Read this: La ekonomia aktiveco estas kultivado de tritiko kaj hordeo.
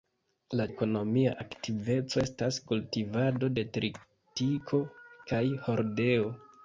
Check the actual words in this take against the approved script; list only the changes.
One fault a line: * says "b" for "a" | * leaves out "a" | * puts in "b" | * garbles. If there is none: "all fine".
all fine